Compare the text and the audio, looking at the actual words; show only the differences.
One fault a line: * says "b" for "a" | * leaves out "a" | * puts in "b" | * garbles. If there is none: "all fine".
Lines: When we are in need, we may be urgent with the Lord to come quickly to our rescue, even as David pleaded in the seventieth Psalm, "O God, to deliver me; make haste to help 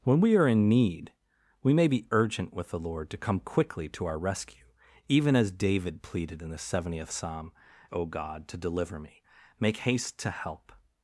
all fine